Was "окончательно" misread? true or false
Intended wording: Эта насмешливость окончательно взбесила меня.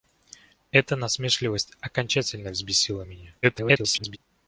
false